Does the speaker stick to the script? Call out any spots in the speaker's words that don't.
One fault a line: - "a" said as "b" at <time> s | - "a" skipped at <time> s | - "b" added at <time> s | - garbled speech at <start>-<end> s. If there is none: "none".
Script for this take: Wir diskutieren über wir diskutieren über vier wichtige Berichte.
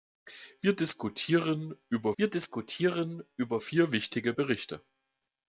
none